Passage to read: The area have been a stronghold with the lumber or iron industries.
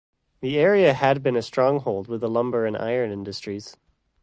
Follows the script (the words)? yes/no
no